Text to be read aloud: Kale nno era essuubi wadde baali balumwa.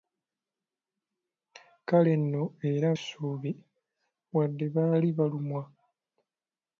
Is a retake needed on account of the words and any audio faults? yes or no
no